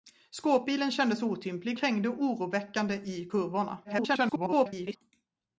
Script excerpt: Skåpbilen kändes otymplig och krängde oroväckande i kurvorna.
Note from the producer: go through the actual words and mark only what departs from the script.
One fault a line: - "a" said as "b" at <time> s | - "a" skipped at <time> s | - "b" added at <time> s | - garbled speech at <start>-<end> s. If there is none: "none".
- "och" skipped at 1.8 s
- garbled speech at 3.8-5.0 s